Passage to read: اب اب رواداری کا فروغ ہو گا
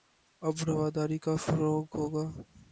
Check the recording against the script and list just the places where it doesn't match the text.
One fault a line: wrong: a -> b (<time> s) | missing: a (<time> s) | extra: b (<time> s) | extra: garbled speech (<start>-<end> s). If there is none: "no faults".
missing: اب (0.6 s)